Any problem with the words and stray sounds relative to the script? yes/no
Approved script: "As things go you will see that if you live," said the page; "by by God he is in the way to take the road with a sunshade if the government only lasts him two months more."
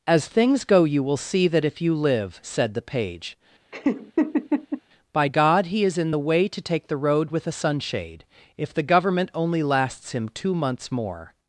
yes